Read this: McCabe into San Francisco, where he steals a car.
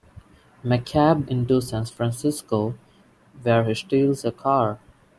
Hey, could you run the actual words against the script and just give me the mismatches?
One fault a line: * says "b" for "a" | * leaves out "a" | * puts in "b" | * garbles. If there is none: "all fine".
all fine